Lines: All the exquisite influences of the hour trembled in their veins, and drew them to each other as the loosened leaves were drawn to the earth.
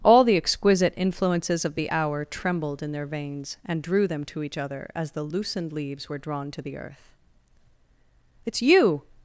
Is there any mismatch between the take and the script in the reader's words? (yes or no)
yes